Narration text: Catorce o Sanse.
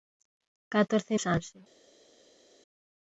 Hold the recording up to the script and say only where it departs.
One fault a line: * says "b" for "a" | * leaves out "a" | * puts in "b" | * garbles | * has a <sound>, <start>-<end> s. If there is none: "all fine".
all fine